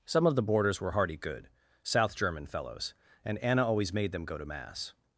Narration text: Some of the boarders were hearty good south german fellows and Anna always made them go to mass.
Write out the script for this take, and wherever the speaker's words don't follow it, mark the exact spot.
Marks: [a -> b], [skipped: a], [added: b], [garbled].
Some of the boarders were hearty good south german fellows and Anna always made them go to mass.